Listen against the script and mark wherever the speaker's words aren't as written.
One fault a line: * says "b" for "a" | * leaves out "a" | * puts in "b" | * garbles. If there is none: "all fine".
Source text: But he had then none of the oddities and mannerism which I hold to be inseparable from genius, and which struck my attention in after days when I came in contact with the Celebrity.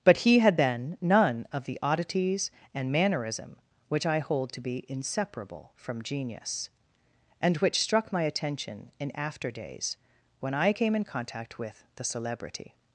all fine